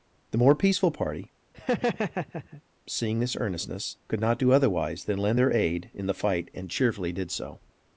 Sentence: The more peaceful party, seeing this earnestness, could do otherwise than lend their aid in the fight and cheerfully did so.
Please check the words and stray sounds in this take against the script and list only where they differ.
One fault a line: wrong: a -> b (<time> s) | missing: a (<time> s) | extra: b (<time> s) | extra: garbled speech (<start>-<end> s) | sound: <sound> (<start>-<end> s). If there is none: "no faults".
sound: laugh (1.5-2.6 s)
extra: not (4.2 s)